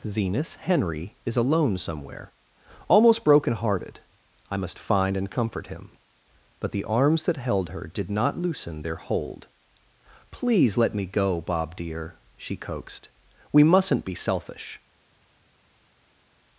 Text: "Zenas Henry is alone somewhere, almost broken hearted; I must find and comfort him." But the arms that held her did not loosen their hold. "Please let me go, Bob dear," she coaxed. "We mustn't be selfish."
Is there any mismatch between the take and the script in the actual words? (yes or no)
no